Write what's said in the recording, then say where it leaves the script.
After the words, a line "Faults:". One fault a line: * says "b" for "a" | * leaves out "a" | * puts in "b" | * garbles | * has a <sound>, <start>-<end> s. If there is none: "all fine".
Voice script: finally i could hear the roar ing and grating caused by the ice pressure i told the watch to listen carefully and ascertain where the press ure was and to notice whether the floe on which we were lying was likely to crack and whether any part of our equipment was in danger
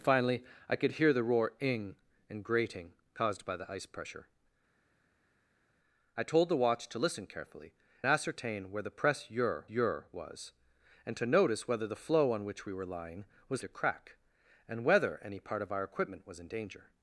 finally i could hear the roar ing and grating caused by the ice pressure i told the watch to listen carefully ascertain where the press ure ure was and to notice whether the floe on which we were lying was to crack and whether any part of our equipment was in danger
Faults:
* leaves out "and"
* puts in "ure"
* leaves out "likely"